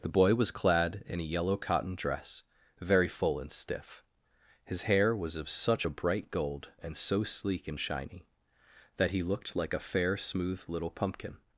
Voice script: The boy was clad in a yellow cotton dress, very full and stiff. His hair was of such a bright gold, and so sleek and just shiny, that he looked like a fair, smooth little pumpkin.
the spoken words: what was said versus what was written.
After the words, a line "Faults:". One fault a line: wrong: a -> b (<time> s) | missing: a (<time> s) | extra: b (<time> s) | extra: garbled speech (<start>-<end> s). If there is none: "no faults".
The boy was clad in a yellow cotton dress, very full and stiff. His hair was of such a bright gold, and so sleek and shiny, that he looked like a fair, smooth little pumpkin.
Faults:
missing: just (7.8 s)